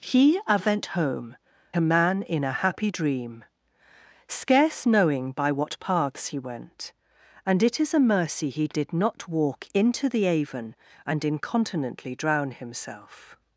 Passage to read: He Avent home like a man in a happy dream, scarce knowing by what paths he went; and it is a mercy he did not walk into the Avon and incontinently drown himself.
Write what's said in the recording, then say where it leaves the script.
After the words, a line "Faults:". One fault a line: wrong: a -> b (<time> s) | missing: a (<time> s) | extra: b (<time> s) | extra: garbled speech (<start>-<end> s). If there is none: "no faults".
He Avent home a man in a happy dream, scarce knowing by what paths he went; and it is a mercy he did not walk into the Avon and incontinently drown himself.
Faults:
missing: like (1.4 s)